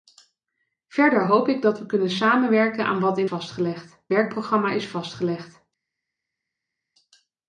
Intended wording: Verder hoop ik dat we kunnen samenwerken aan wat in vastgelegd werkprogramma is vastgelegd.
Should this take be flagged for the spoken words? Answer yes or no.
no